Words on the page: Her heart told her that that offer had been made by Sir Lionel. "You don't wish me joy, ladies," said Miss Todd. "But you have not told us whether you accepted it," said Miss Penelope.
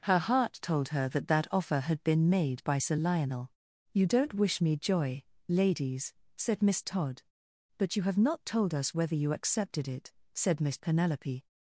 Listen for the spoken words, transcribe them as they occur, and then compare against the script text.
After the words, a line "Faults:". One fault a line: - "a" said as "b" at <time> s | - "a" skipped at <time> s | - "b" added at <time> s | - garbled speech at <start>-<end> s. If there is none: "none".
Her heart told her that that offer had been made by Sir Lionel. "You don't wish me joy, ladies," said Miss Todd. "But you have not told us whether you accepted it," said Miss Penelope.
Faults:
none